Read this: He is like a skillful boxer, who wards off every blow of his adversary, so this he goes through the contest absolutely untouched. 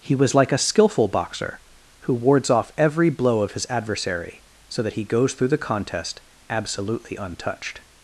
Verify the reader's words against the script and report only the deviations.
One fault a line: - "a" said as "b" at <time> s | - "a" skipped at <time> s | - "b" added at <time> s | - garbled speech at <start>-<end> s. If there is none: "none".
- "is" said as "was" at 0.1 s
- "this" said as "that" at 4.8 s